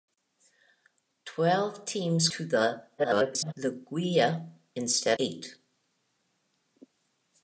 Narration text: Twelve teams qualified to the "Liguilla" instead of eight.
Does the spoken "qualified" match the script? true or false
false